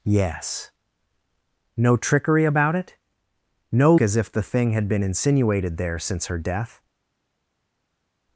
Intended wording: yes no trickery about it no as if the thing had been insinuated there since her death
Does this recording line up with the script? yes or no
yes